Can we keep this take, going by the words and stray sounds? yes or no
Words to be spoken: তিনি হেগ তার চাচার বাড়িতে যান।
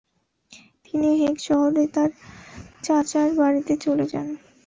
no